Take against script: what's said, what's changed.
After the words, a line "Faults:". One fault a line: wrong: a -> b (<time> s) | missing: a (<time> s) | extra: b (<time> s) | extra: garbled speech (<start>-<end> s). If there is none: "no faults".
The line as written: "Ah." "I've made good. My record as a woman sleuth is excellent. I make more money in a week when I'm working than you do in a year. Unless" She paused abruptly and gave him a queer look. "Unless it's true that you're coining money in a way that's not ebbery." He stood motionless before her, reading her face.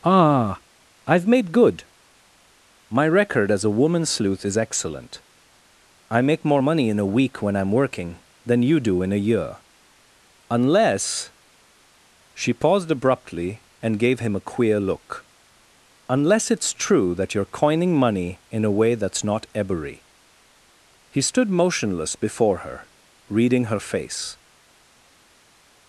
"Ah." "I've made good. My record as a woman sleuth is excellent. I make more money in a week when I'm working than you do in a year. Unless" She paused abruptly and gave him a queer look. "Unless it's true that you're coining money in a way that's not ebbery." He stood motionless before her, reading her face.
Faults:
no faults